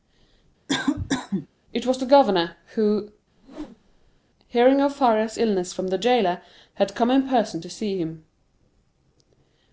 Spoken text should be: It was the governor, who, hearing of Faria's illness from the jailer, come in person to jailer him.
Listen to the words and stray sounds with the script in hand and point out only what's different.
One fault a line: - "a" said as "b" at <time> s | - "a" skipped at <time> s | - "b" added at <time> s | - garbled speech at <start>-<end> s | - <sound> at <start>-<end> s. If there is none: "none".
- cough at 0.7-1.5 s
- whoosh at 3.4-4.2 s
- "had" added at 6.7 s
- "jailer" said as "see" at 7.7 s